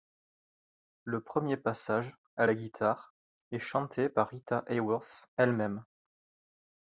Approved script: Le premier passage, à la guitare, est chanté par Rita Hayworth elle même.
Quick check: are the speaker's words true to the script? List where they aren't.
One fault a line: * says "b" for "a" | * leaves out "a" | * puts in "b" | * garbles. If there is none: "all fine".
all fine